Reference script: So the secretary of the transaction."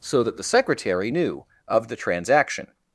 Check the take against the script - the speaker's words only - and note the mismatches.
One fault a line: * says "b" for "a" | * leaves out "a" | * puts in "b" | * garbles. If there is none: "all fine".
* puts in "that"
* puts in "knew"